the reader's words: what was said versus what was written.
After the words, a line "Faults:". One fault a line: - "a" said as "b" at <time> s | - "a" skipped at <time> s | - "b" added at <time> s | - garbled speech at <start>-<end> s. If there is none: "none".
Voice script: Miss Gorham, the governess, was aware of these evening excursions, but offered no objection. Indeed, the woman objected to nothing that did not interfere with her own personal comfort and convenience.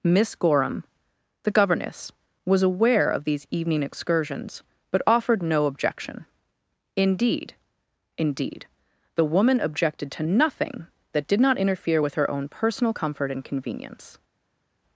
Miss Gorham, the governess, was aware of these evening excursions, but offered no objection. Indeed Indeed, the woman objected to nothing that did not interfere with her own personal comfort and convenience.
Faults:
- "Indeed" added at 8.2 s